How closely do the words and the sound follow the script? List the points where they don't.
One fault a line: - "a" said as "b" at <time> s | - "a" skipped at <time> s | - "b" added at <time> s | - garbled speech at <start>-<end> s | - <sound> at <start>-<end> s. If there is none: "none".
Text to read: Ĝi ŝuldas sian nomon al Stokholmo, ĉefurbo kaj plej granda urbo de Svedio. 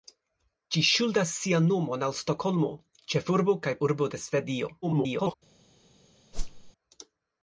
- "plej granda" skipped at 3.8 s
- garbled speech at 4.8-5.3 s
- whoosh at 6.3-6.7 s